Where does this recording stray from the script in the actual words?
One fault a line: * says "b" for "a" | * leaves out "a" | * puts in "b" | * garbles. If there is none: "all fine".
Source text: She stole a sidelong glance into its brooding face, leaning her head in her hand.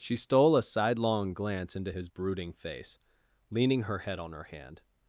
* says "his" for "its"
* says "on" for "in"